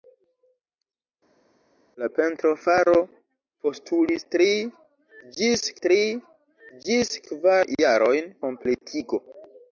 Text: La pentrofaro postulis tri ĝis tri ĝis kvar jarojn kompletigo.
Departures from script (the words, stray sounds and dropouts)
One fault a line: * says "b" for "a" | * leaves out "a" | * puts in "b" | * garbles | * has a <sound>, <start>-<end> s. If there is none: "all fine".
all fine